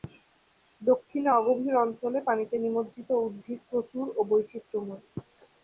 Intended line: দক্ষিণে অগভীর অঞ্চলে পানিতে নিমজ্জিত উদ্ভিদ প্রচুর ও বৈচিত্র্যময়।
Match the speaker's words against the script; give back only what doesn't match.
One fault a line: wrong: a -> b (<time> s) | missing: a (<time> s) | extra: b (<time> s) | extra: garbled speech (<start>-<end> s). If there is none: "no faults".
no faults